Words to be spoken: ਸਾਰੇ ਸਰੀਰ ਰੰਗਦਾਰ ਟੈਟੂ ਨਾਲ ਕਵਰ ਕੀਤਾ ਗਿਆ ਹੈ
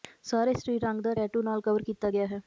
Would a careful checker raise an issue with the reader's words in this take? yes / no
no